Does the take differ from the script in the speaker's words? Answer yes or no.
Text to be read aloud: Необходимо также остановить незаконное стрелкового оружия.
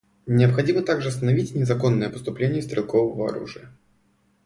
yes